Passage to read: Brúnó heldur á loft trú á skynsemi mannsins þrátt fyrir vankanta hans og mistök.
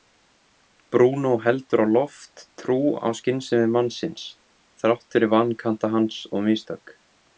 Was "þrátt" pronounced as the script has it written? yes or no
yes